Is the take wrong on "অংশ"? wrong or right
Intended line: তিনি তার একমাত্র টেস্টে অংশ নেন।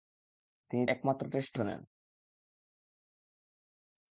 wrong